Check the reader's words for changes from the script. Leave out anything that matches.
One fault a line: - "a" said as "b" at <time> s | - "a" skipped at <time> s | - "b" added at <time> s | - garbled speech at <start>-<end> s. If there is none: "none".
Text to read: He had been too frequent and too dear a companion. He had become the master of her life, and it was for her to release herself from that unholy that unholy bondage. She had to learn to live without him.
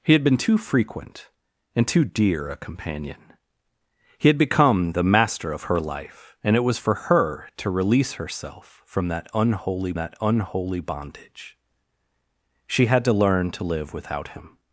none